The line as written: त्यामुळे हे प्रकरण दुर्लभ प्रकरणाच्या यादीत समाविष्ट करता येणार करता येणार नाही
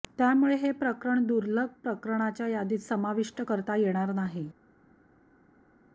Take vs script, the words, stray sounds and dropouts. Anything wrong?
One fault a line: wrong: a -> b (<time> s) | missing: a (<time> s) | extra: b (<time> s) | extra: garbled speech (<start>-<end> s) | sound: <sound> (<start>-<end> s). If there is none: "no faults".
missing: करता येणार (4.1 s)